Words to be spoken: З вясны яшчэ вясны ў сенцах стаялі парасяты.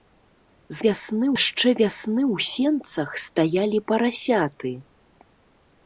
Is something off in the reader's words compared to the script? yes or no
no